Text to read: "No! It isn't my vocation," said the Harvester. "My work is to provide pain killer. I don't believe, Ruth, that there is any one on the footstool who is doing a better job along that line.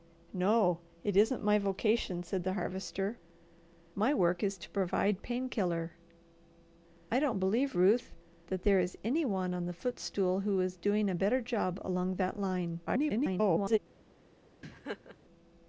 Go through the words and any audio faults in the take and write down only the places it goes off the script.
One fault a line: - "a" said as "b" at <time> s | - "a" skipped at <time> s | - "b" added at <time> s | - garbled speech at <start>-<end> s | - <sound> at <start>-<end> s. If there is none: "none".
- garbled speech at 12.9-13.8 s
- laugh at 14.6-15.2 s